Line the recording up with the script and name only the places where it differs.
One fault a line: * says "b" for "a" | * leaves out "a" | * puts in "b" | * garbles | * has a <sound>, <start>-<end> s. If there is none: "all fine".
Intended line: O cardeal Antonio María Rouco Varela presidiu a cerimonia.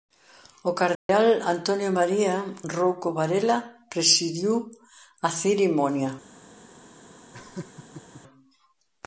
* has a dropout, 0.9-1.1 s
* has a laugh, 7.3-8.2 s